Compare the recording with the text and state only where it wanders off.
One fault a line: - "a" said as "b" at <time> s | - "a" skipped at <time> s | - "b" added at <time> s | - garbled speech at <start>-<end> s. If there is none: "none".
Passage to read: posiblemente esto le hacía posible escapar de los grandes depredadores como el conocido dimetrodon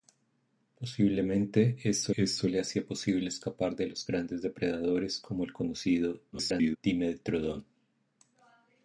- "esto" added at 2.2 s
- garbled speech at 6.3-6.8 s